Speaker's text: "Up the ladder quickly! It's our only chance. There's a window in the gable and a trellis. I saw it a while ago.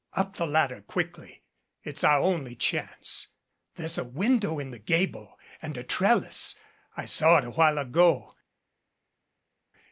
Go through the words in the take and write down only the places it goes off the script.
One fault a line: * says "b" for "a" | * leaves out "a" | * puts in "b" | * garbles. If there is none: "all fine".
all fine